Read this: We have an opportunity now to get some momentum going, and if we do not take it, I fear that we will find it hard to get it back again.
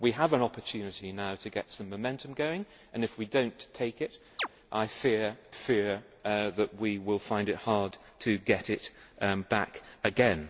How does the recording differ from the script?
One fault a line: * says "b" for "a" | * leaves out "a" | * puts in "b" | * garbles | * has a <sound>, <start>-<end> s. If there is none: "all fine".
* has a chirp, 4.4-4.5 s
* puts in "fear"